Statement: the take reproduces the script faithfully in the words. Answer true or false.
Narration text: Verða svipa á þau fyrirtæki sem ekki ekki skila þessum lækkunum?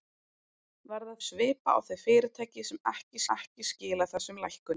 true